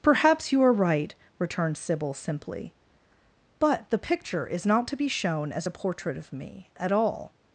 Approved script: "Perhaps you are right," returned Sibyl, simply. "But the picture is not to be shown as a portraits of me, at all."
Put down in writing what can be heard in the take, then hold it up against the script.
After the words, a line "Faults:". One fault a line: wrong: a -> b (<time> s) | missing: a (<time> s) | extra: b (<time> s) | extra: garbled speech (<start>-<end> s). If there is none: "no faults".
"Perhaps you are right," returned Sibyl, simply. "But the picture is not to be shown as a portrait of me, at all."
Faults:
wrong: portraits -> portrait (5.7 s)